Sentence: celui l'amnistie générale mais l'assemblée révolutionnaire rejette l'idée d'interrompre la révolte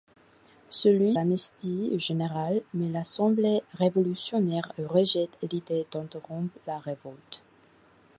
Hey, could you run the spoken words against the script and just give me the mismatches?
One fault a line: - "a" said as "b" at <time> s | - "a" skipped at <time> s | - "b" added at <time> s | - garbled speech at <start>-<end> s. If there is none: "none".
none